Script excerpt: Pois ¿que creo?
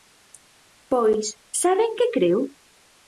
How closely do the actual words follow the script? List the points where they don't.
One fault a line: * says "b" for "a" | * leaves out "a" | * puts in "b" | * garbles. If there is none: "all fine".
* puts in "saben"